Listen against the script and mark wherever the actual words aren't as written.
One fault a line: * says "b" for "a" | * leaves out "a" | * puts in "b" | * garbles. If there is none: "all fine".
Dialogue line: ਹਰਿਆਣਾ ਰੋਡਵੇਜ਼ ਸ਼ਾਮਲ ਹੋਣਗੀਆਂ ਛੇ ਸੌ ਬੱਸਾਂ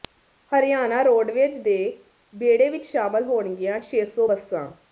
* puts in "ਦੇ ਬੇੜੇ ਵਿੱਚ"